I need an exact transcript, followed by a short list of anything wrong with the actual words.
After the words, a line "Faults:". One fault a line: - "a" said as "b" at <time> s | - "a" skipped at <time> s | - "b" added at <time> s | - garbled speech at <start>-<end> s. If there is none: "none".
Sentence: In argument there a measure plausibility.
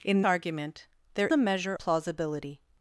In argument there a measure plausibility.
Faults:
none